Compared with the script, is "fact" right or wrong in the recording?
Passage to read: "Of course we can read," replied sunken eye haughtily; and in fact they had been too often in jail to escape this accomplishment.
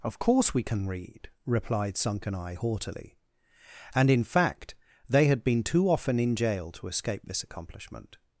right